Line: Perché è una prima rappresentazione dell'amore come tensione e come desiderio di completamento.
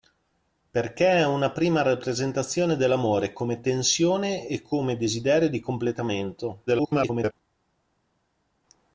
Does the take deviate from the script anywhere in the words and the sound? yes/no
yes